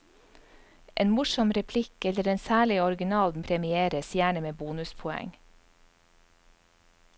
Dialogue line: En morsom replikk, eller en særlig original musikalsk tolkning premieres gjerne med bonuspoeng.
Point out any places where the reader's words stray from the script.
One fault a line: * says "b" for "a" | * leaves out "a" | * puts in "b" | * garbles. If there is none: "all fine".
* leaves out "musikalsk tolkning"